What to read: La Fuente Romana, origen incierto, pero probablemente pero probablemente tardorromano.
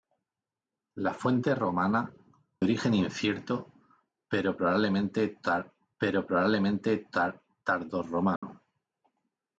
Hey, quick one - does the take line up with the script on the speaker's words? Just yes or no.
yes